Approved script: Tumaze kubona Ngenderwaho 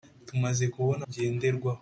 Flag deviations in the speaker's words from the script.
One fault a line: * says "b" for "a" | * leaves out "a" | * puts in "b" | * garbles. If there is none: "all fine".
all fine